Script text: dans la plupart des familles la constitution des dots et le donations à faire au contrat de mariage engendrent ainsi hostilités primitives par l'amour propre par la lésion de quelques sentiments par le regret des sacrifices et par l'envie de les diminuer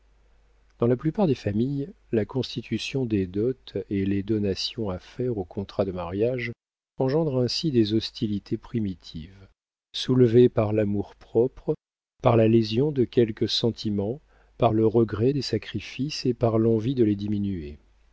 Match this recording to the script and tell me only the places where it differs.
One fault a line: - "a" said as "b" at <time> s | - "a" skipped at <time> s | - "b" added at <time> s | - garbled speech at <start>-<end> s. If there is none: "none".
- "le" said as "les" at 4.0 s
- "des" added at 7.7 s
- "soulevées" added at 9.9 s